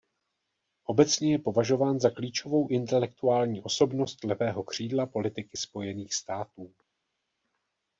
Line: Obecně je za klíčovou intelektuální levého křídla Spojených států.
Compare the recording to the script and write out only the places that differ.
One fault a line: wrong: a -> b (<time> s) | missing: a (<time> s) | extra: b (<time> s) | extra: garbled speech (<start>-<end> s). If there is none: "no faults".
extra: považován (1.4 s)
extra: osobnost (3.6 s)
extra: politiky (5.0 s)